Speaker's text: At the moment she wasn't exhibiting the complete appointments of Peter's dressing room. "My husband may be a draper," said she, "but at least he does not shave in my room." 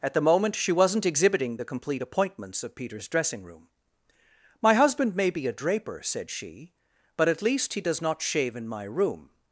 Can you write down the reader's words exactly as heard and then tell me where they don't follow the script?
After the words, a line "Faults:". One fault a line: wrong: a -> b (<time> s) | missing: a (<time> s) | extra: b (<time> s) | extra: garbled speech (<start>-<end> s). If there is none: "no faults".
At the moment she wasn't exhibiting the complete appointments of Peter's dressing room. "My husband may be a draper," said she, "but at least he does not shave in my room."
Faults:
no faults